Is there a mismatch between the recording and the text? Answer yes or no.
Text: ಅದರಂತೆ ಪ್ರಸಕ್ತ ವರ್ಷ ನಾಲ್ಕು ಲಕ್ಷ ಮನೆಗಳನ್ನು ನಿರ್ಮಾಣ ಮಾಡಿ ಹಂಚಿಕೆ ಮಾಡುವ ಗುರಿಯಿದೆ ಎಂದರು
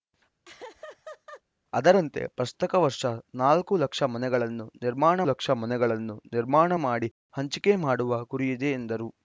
yes